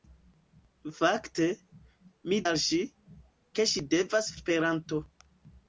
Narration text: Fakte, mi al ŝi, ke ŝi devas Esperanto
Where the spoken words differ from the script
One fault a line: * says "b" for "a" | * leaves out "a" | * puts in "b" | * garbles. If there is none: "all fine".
all fine